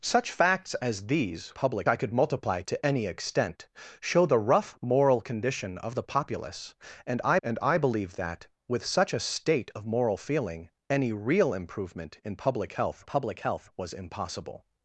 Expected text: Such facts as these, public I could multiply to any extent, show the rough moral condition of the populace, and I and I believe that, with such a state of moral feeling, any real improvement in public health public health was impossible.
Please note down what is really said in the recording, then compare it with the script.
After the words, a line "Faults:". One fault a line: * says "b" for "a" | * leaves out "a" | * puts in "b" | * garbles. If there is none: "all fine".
Such facts as these, public I could multiply to any extent, show the rough moral condition of the populace, and I and I believe that, with such a state of moral feeling, any real improvement in public health public health was impossible.
Faults:
all fine